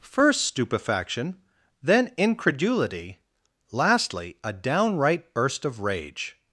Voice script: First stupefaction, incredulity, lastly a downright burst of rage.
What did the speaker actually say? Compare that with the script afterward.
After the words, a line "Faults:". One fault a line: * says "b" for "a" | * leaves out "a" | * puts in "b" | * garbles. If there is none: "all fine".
First stupefaction, then incredulity, lastly a downright burst of rage.
Faults:
* puts in "then"